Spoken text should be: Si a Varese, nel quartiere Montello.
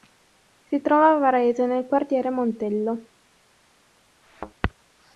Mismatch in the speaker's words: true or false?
true